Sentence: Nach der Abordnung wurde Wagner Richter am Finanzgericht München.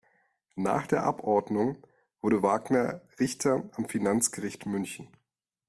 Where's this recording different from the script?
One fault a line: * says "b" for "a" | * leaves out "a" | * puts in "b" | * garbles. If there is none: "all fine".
all fine